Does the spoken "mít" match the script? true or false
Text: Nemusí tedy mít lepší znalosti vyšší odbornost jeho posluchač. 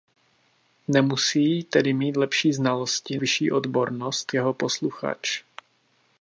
true